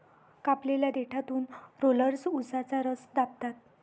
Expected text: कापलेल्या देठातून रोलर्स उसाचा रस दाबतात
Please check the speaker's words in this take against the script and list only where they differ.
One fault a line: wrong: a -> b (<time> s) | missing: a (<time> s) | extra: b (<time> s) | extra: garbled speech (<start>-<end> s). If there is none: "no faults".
no faults